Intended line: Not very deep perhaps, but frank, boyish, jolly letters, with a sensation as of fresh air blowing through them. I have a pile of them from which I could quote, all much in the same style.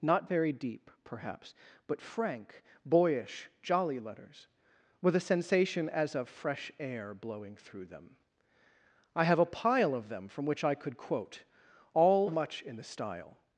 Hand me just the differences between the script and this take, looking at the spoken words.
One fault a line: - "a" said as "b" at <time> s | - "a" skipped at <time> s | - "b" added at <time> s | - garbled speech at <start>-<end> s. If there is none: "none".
- "same" skipped at 12.8 s